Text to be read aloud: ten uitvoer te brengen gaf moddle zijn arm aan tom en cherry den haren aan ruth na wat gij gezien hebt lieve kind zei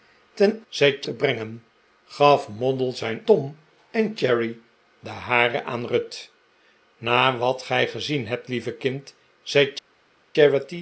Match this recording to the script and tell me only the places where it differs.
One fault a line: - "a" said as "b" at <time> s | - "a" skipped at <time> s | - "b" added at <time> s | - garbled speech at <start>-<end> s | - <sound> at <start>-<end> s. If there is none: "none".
- "uitvoer" said as "zei" at 0.7 s
- "arm aan" skipped at 3.2 s